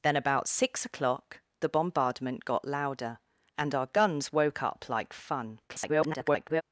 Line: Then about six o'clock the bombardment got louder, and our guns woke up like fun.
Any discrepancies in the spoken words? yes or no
yes